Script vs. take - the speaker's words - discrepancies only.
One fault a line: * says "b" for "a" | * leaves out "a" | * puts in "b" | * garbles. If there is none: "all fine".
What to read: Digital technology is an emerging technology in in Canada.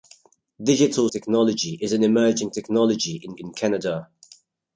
all fine